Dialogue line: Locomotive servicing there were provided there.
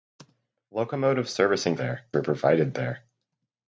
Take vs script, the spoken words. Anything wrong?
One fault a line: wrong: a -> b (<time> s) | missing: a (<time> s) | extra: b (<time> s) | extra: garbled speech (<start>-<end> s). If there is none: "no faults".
no faults